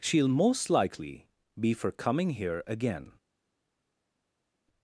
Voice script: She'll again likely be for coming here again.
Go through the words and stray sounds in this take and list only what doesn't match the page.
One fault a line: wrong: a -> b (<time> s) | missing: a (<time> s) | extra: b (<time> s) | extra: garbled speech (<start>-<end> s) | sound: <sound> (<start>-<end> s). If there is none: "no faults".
wrong: again -> most (0.3 s)